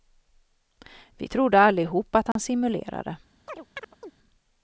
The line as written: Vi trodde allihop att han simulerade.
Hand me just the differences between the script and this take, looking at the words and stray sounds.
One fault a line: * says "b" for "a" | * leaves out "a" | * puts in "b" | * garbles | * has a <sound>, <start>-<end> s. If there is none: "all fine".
* has a dropout, 2.3-2.4 s
* has a chirp, 3.5-4.1 s